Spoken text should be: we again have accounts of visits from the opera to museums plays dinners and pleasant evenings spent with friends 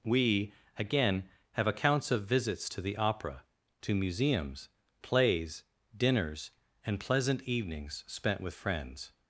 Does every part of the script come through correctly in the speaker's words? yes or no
no